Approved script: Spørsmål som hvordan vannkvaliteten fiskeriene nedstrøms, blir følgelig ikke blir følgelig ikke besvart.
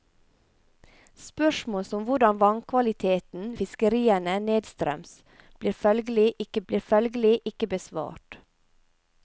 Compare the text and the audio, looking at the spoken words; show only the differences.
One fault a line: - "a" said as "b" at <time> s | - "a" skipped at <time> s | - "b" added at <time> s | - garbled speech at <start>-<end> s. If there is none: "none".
none